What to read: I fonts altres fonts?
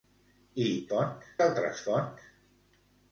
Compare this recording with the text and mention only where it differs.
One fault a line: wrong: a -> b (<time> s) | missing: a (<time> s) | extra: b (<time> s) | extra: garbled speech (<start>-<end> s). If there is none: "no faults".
no faults